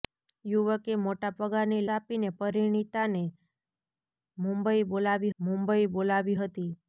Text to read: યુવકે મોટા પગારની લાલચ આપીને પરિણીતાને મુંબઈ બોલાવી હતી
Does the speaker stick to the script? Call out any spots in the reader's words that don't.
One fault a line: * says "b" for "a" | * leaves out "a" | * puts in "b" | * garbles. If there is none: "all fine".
* leaves out "લાલચ"
* puts in "મુંબઈ બોલાવી"